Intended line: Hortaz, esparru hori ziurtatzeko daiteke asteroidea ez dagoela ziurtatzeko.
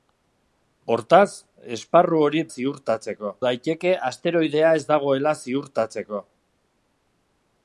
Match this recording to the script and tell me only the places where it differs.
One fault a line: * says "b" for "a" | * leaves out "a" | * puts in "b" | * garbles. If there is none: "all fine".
all fine